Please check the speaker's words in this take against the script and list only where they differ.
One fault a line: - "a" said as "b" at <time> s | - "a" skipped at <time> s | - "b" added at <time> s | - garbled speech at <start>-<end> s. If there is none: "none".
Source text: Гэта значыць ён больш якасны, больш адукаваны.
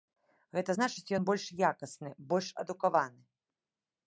none